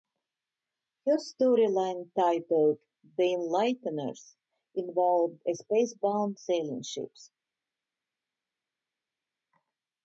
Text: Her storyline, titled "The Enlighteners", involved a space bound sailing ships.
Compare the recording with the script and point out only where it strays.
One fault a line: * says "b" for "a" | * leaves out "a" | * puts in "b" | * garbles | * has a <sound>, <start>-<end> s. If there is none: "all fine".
all fine